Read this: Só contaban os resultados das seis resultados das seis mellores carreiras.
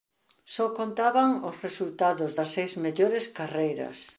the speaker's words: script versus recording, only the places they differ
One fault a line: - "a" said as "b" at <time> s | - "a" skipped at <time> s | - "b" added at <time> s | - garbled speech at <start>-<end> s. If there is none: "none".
- "resultados das seis" skipped at 2.7 s